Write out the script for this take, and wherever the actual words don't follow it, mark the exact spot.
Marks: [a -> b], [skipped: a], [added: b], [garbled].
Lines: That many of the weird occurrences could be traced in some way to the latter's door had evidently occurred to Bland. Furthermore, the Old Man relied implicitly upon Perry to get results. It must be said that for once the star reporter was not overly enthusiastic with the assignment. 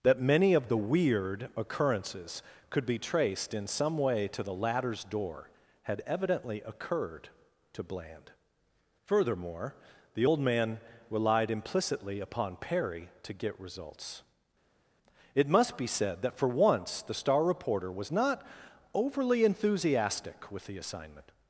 That many of the weird occurrences could be traced in some way to the latter's door had evidently occurred to Bland. Furthermore, the Old Man relied implicitly upon Perry to get results. It must be said that for once the star reporter was not overly enthusiastic with the assignment.